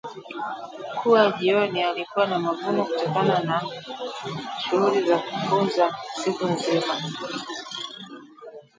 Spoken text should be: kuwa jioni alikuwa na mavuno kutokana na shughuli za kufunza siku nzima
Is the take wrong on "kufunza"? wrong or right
right